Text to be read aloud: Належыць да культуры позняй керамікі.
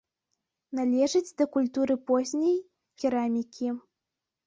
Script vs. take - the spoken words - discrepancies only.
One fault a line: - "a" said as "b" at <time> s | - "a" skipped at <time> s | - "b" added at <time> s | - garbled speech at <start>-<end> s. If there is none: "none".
none